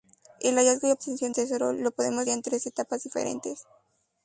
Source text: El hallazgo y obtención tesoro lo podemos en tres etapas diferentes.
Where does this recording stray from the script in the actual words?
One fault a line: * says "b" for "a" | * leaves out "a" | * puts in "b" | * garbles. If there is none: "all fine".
all fine